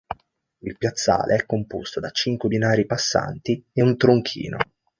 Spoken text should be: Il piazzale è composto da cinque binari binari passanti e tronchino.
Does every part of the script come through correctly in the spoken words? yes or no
no